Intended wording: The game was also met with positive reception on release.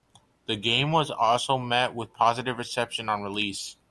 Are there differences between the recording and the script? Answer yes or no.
no